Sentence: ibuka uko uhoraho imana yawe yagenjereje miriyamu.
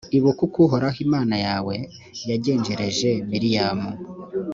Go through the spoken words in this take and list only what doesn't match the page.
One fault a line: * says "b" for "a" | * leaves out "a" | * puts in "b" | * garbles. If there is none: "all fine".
all fine